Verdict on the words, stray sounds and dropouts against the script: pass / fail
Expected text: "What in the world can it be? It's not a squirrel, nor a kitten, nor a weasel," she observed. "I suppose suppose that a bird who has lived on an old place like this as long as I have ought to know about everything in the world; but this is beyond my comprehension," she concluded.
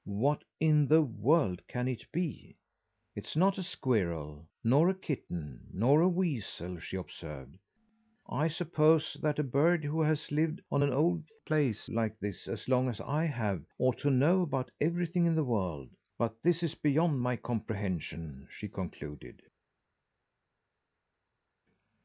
fail